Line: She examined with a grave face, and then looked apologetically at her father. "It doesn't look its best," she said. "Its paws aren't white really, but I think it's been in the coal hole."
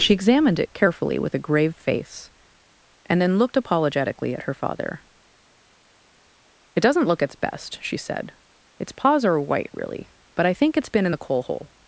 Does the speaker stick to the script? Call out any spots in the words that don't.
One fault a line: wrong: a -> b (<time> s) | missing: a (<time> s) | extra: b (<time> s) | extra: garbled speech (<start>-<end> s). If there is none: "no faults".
extra: it carefully (0.6 s)
wrong: aren't -> are (9.2 s)